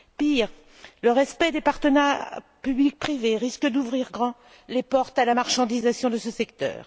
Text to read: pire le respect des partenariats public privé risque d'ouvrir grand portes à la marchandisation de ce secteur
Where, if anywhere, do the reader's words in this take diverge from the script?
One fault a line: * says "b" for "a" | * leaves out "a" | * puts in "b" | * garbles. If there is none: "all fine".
* puts in "les"